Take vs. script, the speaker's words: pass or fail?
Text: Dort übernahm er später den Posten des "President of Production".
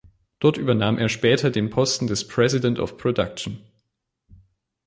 pass